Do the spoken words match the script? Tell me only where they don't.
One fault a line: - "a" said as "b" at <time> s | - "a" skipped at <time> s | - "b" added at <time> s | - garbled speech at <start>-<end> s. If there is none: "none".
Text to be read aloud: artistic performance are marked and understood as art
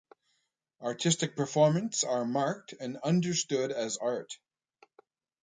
none